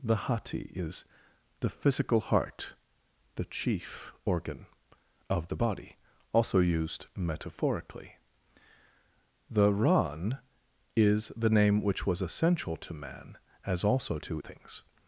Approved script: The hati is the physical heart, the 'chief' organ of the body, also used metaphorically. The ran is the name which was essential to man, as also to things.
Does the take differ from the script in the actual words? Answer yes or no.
no